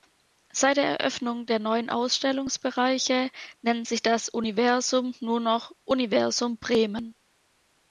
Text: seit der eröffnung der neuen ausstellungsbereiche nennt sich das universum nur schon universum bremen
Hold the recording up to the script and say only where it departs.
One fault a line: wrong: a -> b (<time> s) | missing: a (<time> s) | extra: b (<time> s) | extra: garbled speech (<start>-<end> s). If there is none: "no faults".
wrong: schon -> noch (5.4 s)